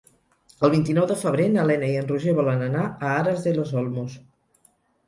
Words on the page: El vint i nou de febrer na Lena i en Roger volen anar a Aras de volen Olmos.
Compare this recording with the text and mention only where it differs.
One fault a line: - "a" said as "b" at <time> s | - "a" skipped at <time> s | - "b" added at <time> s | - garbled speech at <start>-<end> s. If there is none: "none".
- "volen" said as "los" at 3.6 s